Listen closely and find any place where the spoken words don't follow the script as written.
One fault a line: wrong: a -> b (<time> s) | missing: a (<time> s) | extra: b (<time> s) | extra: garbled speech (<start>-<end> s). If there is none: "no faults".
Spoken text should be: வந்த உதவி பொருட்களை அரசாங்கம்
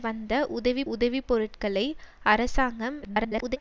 extra: உதவி (0.9 s)
extra: garbled speech (3.0-3.6 s)